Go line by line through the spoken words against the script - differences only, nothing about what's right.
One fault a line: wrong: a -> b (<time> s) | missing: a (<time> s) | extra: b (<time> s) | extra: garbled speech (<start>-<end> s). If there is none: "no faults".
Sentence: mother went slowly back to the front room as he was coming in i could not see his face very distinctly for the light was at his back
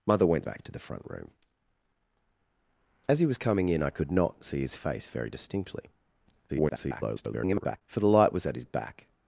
missing: slowly (0.5 s)
extra: garbled speech (6.5-7.8 s)